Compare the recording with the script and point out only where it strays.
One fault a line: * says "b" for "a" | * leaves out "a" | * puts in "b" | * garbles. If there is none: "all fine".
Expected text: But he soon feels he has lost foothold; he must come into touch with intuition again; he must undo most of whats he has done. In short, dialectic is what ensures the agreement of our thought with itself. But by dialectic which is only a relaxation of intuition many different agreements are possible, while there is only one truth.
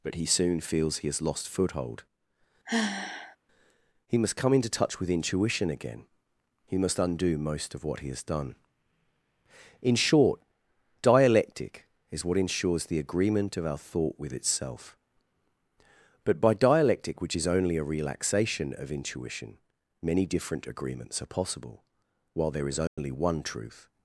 * says "what" for "whats"